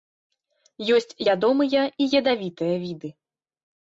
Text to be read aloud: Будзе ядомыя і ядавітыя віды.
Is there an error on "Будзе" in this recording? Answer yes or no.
yes